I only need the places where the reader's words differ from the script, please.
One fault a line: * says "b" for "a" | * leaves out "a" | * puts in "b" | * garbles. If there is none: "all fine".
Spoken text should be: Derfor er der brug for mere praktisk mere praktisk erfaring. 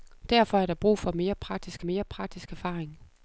all fine